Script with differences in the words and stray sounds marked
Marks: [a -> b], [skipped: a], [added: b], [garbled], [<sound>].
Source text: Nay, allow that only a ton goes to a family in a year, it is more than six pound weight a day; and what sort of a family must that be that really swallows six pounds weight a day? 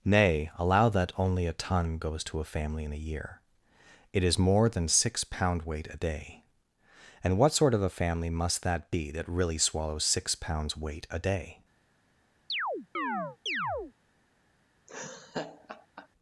Nay, allow that only a ton goes to a family in a year, it is more than six pound weight a day; and what sort of a family must that be that really swallows six pounds weight a day? [chirp] [laugh]